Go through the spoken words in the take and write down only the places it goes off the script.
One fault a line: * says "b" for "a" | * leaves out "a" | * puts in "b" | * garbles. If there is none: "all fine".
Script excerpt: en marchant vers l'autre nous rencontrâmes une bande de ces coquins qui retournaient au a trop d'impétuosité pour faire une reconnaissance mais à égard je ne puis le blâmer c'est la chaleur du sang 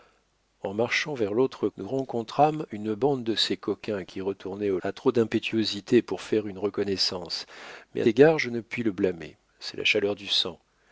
all fine